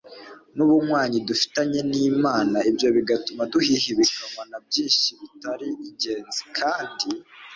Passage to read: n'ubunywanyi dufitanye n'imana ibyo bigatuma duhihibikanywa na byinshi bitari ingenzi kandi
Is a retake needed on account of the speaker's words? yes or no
no